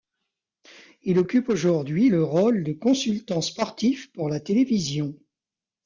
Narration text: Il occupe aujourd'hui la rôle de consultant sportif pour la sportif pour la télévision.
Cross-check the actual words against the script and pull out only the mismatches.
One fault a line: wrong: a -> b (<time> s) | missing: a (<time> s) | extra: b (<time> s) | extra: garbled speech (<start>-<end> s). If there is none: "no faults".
wrong: la -> le (2.1 s)
missing: sportif pour la (4.4 s)